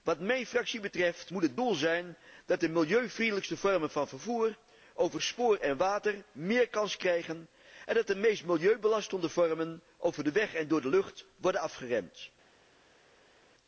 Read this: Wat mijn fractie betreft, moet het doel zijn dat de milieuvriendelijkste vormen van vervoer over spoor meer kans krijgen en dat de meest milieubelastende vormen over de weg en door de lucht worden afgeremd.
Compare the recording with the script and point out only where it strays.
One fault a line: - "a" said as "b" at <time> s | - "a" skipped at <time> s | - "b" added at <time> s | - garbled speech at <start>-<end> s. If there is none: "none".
- "en water" added at 5.6 s